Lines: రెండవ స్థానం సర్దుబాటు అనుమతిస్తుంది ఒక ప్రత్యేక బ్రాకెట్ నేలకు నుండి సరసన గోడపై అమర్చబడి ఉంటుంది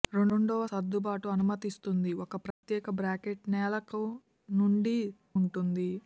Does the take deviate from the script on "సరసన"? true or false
true